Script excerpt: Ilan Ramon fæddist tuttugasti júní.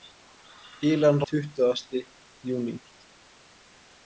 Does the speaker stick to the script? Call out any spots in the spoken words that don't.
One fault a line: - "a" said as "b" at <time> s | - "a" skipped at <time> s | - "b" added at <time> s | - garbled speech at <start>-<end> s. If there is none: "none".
- "Ramon fæddist" skipped at 1.2 s